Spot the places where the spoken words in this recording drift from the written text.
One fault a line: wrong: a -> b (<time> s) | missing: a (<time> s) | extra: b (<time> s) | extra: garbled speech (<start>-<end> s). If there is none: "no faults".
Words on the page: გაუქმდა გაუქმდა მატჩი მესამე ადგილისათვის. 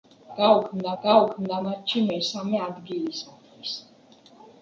no faults